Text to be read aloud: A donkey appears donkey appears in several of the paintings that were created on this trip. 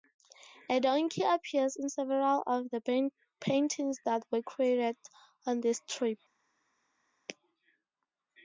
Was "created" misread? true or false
false